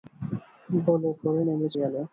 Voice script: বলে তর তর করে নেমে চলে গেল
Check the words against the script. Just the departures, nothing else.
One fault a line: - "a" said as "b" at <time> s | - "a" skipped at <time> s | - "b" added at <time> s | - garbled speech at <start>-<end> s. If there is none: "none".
- "তর তর" skipped at 1.1 s
- "চলে" skipped at 1.7 s